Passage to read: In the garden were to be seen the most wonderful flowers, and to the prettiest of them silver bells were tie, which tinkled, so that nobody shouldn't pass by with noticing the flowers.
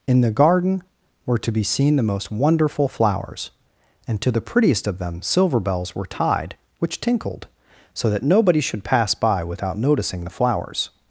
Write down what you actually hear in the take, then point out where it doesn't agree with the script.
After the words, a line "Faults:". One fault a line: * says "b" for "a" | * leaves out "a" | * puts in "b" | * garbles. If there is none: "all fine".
In the garden were to be seen the most wonderful flowers, and to the prettiest of them silver bells were tied, which tinkled, so that nobody should pass by without noticing the flowers.
Faults:
* says "tied" for "tie"
* says "should" for "shouldn't"
* says "without" for "with"